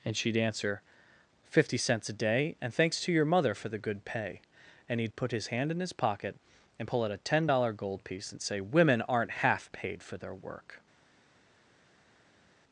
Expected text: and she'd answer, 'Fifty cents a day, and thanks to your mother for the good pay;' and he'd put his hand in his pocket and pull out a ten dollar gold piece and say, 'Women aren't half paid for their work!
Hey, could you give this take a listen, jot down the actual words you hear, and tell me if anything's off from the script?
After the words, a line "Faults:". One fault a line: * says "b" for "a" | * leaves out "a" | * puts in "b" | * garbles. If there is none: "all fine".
and she'd answer, 'Fifty cents a day, and thanks to your mother for the good pay;' and he'd put his hand in his pocket and pull out a ten dollar gold piece and say, 'Women aren't half paid for their work!
Faults:
all fine